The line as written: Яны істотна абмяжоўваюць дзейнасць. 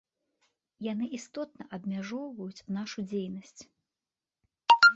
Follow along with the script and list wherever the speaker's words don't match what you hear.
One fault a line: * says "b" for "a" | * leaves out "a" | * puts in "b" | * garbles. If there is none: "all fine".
* puts in "нашу"